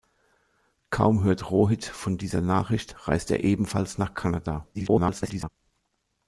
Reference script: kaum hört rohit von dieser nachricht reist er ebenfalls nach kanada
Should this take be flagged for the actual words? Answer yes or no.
yes